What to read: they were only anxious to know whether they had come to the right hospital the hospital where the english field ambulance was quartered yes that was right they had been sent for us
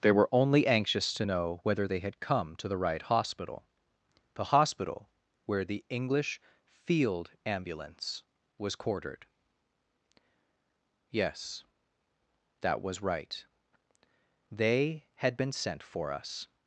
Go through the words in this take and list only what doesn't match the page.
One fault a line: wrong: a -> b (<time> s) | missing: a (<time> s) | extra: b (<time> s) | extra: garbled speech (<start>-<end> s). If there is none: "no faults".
no faults